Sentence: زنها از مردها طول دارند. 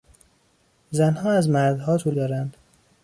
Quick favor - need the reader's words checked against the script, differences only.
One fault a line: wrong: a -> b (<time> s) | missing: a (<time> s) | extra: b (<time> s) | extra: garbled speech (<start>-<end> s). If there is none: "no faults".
no faults